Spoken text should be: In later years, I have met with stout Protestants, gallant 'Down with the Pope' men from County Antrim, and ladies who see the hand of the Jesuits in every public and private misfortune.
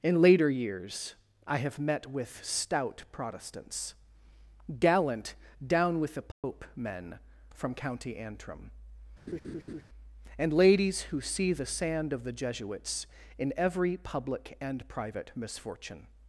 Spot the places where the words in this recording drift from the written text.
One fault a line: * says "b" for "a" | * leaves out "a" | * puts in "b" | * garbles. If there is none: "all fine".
* says "sand" for "hand"